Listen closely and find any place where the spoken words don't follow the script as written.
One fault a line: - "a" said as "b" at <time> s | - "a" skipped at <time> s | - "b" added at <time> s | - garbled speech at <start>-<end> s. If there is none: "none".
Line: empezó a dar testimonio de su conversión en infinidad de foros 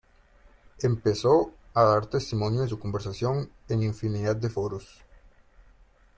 none